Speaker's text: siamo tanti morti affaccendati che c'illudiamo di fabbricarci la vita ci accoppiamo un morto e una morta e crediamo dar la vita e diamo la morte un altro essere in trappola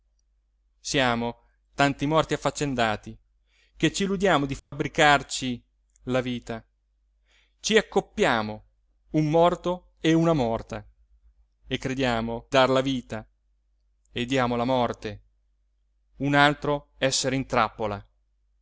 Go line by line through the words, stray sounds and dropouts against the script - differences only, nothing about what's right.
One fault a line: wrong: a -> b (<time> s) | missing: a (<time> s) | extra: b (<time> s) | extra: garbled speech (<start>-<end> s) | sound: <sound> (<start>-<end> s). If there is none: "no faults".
sound: dropout (4.6-4.7 s)